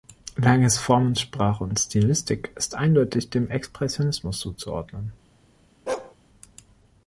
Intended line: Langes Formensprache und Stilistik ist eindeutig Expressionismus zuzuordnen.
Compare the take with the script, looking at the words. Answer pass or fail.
fail